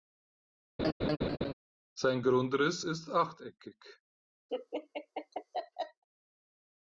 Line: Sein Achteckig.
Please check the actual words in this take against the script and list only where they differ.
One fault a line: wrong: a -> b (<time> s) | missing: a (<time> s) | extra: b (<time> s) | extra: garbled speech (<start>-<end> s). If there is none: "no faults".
extra: Grundriss ist (2.2 s)